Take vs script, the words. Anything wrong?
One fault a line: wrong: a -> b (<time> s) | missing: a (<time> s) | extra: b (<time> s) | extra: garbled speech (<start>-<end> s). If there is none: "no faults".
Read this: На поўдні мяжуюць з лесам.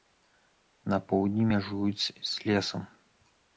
no faults